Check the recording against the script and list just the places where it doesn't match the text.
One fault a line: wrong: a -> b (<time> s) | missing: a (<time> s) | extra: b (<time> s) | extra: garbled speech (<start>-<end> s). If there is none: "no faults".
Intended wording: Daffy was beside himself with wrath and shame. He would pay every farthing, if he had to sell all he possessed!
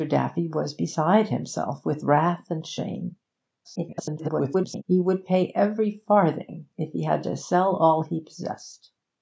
extra: garbled speech (3.6-4.8 s)